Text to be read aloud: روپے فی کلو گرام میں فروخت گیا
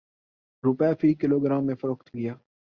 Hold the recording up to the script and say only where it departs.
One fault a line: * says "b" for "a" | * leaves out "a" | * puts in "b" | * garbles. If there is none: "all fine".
all fine